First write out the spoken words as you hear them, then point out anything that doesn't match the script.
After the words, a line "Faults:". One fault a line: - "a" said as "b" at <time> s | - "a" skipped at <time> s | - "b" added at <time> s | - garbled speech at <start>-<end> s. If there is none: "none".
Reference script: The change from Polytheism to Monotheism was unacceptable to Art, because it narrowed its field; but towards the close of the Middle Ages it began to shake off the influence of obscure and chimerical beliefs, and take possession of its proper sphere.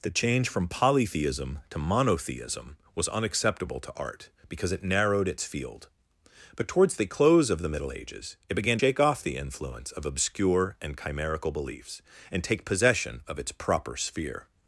The change from Polytheism to Monotheism was unacceptable to Art, because it narrowed its field; but towards the close of the Middle Ages it began shake off the influence of obscure and chimerical beliefs, and take possession of its proper sphere.
Faults:
- "to" skipped at 8.8 s